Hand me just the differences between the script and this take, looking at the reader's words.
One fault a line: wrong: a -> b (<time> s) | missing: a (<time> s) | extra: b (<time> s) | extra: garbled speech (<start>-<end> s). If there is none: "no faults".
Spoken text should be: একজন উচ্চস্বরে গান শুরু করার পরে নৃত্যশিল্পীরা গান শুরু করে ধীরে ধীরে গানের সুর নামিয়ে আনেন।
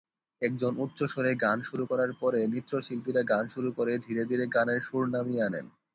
no faults